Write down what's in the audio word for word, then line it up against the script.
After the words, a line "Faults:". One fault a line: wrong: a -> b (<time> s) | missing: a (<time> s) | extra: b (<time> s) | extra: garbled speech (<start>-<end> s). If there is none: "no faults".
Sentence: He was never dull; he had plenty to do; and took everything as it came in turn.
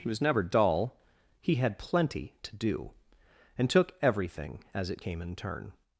He was never dull; he had plenty to do; and took everything as it came in turn.
Faults:
no faults